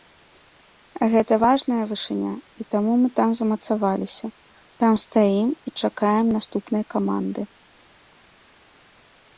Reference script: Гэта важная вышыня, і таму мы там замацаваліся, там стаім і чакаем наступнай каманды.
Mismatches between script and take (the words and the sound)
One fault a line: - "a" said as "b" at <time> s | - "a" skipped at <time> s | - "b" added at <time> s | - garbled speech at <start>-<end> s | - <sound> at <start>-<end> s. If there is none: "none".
none